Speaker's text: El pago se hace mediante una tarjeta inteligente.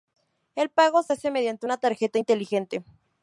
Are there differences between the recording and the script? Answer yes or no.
no